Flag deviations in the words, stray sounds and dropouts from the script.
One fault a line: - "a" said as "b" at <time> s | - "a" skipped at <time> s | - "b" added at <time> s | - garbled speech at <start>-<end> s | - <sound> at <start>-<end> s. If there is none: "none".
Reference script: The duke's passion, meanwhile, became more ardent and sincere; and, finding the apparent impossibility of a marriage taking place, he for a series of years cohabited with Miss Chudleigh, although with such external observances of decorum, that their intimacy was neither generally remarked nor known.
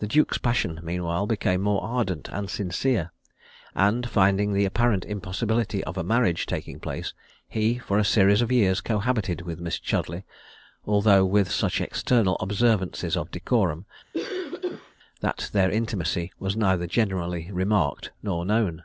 - cough at 14.1-15.0 s